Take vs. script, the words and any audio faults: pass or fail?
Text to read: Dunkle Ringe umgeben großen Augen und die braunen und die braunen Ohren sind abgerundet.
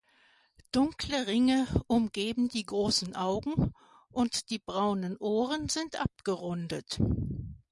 fail